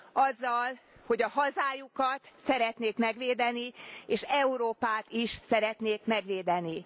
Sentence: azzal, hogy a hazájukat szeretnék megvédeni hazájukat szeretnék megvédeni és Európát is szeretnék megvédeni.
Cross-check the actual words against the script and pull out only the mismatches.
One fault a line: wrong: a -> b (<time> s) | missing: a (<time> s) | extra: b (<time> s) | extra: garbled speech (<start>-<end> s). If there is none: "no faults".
missing: hazájukat szeretnék megvédeni (3.7 s)